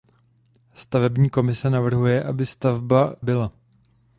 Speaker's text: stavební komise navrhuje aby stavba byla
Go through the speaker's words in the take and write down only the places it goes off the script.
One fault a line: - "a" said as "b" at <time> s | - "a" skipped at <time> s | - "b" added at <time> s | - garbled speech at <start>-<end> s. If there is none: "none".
none